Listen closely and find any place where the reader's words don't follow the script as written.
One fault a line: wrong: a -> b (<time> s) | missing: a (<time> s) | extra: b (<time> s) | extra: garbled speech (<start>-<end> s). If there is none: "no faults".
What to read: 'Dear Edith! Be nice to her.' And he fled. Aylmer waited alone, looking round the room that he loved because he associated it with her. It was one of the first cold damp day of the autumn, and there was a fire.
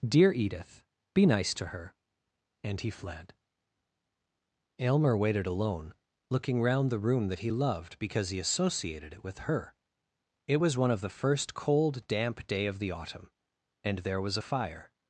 no faults